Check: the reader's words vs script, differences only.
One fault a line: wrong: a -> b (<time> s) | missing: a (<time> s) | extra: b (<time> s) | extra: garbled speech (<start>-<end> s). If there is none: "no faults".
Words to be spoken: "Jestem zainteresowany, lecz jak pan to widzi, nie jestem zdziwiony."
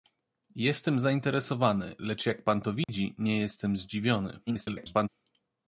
extra: garbled speech (4.5-5.1 s)